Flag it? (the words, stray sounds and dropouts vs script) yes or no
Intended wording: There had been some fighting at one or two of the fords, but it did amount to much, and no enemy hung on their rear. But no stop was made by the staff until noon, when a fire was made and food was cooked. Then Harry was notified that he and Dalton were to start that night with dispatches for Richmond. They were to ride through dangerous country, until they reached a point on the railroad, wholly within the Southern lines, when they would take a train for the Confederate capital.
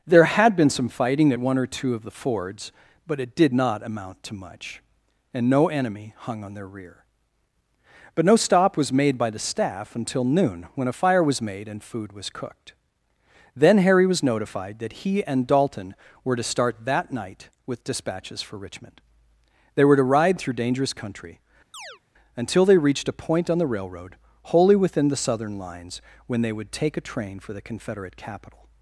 yes